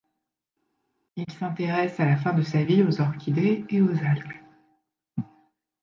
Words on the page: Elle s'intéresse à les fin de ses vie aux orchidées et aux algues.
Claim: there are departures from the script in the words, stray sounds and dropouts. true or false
true